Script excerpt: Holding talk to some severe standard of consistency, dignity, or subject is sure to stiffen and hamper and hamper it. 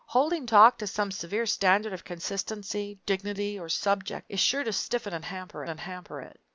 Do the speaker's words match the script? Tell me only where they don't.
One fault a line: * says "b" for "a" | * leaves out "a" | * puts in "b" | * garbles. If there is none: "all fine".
all fine